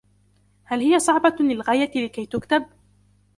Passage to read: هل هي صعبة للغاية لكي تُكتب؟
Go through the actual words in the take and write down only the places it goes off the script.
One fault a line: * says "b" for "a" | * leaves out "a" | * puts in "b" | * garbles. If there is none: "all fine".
all fine